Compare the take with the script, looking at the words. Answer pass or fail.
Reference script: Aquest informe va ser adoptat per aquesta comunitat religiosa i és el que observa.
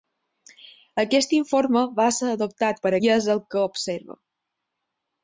fail